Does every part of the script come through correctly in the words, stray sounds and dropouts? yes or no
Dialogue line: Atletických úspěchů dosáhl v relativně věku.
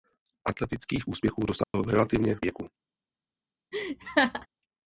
no